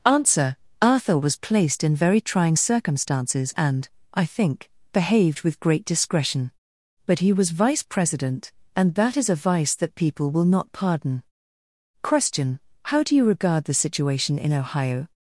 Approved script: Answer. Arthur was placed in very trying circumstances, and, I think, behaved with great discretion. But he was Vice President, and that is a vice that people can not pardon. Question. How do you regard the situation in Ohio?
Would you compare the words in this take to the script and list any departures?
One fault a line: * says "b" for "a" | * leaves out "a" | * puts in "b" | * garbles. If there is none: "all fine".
* says "will" for "can"